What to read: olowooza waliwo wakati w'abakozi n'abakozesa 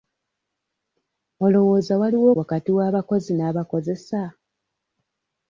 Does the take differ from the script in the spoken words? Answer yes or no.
no